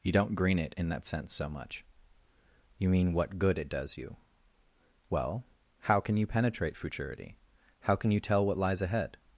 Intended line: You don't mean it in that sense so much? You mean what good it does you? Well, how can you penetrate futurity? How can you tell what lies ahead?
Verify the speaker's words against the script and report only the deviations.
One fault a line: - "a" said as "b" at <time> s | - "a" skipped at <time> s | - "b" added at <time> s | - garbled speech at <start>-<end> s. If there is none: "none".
- "mean" said as "green" at 0.3 s